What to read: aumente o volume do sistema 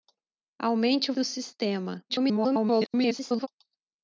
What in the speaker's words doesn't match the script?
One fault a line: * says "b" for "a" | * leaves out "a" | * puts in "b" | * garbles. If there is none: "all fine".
* leaves out "volume"
* garbles